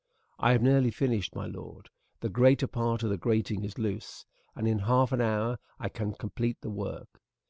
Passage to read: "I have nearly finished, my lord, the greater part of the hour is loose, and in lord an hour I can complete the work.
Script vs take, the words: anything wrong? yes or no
yes